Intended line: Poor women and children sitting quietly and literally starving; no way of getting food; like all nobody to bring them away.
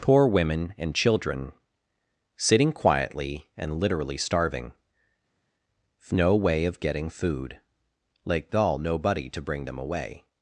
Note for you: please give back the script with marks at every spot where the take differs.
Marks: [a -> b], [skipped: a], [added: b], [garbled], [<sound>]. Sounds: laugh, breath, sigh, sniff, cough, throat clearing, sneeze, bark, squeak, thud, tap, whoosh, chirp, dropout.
Poor women and children sitting quietly and literally starving; no way of getting food; like all nobody to bring them away.